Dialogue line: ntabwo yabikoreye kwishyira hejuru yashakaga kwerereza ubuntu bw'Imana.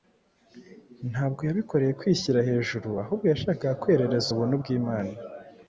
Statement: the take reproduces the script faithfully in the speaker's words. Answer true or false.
false